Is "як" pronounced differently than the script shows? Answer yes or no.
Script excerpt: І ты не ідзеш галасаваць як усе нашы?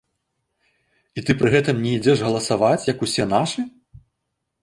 no